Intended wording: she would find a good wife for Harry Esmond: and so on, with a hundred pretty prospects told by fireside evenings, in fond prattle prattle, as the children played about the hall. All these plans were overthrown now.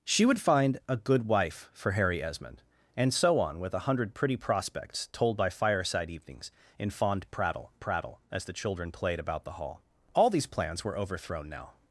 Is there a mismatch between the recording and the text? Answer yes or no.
no